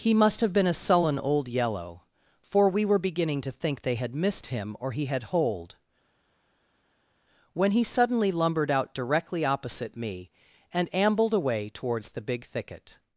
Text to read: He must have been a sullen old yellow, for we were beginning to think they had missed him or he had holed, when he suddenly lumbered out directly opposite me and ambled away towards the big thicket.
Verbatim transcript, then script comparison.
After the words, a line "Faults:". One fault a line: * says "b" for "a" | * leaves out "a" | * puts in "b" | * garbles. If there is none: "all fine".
He must have been a sullen old yellow, for we were beginning to think they had missed him or he had holed, when he suddenly lumbered out directly opposite me and ambled away towards the big thicket.
Faults:
all fine